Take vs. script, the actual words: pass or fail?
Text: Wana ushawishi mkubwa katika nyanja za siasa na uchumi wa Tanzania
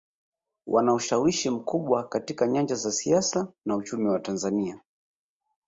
pass